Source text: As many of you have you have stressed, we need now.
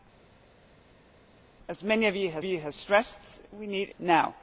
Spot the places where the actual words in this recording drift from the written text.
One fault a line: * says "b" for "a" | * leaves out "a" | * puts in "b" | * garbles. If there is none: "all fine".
all fine